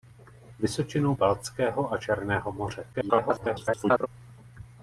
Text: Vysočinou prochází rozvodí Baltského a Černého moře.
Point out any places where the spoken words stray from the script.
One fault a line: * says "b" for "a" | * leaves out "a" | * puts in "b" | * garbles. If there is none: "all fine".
* leaves out "prochází rozvodí"
* garbles